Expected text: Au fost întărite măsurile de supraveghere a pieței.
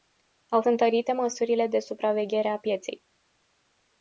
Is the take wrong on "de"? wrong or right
right